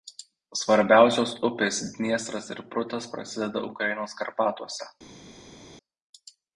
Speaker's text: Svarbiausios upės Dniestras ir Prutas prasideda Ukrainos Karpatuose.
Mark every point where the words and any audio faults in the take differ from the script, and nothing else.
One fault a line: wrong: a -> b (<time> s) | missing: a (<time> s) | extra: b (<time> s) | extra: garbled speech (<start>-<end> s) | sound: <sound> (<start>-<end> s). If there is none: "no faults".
no faults